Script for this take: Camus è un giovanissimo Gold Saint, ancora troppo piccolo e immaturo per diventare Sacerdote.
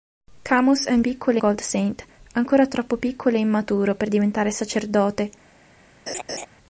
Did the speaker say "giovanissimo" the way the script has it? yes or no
no